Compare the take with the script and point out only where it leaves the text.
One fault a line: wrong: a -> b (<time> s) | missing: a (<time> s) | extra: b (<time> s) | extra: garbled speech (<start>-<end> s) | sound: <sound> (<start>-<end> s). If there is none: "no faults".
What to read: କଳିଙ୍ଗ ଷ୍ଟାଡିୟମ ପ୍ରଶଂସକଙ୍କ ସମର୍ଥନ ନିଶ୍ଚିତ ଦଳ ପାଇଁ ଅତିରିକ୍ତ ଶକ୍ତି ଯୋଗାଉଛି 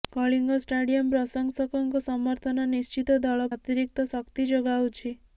missing: ପାଇଁ (3.5 s)